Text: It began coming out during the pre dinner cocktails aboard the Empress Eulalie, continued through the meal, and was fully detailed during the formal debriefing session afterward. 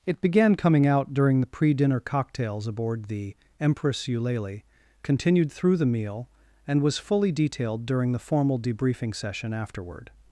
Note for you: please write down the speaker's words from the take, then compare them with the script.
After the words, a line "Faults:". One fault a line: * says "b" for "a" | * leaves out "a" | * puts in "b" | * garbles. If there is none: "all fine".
It began coming out during the pre dinner cocktails aboard the Empress Eulalie, continued through the meal, and was fully detailed during the formal debriefing session afterward.
Faults:
all fine